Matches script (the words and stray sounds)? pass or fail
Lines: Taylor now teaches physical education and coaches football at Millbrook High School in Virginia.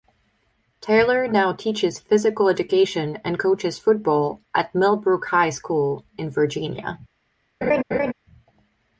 fail